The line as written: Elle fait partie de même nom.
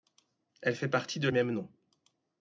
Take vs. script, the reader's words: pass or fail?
pass